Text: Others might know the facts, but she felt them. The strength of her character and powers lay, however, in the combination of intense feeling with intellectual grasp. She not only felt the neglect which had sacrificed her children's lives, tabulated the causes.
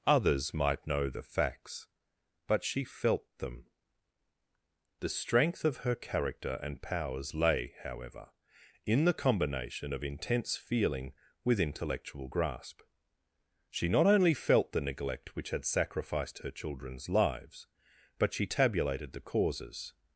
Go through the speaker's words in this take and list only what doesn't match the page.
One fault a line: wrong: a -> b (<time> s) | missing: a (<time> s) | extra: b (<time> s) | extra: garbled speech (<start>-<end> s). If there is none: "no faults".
extra: but she (18.2 s)